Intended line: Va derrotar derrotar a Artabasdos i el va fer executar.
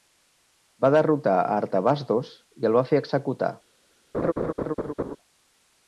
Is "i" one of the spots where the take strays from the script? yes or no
no